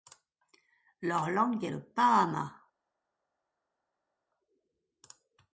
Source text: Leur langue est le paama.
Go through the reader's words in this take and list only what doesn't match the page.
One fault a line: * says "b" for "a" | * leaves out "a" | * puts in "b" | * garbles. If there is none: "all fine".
all fine